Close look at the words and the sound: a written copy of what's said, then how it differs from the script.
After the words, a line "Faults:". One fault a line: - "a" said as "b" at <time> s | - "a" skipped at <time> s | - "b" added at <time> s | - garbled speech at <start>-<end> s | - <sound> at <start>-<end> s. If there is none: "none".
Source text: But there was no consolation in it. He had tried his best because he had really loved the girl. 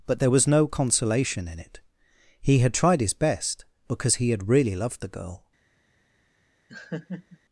But there was no consolation in it. He had tried his best because he had really loved the girl.
Faults:
- laugh at 6.7-7.4 s